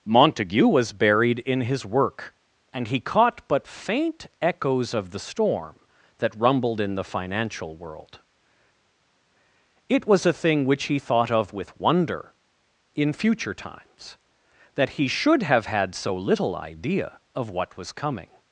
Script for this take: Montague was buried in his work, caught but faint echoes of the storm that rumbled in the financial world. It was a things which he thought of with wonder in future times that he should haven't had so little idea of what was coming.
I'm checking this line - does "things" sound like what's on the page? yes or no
no